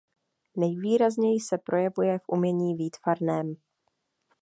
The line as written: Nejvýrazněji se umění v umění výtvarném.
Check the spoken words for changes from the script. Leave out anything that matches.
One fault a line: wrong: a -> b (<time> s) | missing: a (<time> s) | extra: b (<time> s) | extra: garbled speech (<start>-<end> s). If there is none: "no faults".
wrong: umění -> projevuje (1.6 s)